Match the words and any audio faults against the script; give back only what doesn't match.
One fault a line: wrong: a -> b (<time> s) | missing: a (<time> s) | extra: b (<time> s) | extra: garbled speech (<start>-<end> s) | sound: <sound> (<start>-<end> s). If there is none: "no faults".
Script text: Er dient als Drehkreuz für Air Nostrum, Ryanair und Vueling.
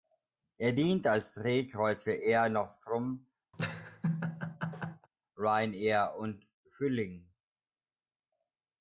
sound: laugh (3.5-5.1 s)